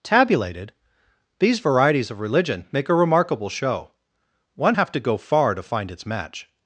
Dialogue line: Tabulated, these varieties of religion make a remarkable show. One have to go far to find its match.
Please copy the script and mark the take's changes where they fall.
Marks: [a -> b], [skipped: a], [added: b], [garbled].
Tabulated, these varieties of religion make a remarkable show. One have to go far to find its match.